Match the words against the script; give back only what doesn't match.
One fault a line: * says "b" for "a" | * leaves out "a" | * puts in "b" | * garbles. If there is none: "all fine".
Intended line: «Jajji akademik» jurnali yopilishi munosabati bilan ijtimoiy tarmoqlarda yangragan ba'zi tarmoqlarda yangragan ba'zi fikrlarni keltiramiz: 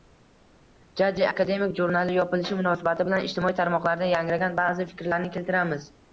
* leaves out "tarmoqlarda yangragan ba'zi"